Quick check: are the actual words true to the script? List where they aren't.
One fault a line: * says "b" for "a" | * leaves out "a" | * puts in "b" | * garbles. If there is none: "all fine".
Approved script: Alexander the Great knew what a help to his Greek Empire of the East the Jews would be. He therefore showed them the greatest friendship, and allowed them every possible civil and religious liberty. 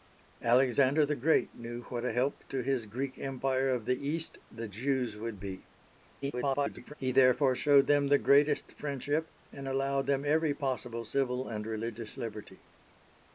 * garbles